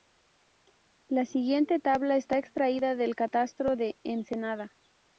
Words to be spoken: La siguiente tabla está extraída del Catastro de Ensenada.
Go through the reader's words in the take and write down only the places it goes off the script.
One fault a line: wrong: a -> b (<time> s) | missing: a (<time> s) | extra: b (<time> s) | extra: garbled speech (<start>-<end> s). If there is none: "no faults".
no faults